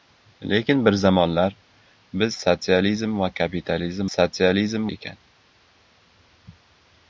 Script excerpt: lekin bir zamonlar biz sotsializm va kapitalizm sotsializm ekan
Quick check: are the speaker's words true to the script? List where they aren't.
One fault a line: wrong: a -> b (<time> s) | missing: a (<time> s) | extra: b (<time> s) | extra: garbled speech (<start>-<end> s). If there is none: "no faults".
no faults